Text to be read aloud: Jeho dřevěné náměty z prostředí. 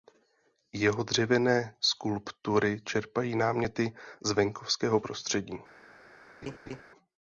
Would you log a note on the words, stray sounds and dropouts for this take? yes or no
yes